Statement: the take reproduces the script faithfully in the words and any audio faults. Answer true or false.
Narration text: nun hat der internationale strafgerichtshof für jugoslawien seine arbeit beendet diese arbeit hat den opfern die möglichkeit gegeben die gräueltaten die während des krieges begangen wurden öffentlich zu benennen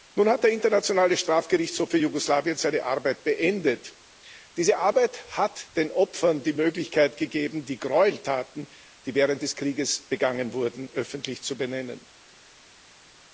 true